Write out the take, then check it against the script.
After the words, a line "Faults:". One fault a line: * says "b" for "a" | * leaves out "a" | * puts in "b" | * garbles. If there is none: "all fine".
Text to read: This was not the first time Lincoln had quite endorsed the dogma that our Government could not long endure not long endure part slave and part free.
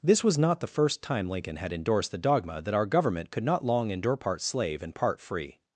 This was not the first time Lincoln had endorsed the dogma that our Government could not long endure part slave and part free.
Faults:
* leaves out "quite"
* leaves out "not long endure"